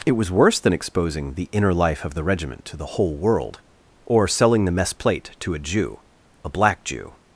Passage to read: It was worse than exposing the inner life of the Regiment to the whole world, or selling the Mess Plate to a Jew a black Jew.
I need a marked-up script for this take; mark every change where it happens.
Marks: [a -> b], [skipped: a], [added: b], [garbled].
It was worse than exposing the inner life of the Regiment to the whole world, or selling the Mess Plate to a Jew a black Jew.